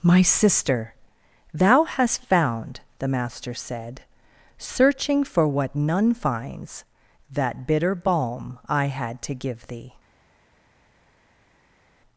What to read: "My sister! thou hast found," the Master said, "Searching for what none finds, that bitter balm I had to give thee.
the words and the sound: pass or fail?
pass